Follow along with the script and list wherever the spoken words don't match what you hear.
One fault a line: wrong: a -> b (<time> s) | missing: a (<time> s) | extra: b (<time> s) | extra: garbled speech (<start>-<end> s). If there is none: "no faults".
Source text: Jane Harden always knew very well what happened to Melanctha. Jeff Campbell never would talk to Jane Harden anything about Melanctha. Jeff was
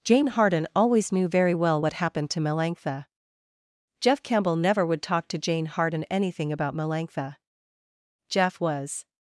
no faults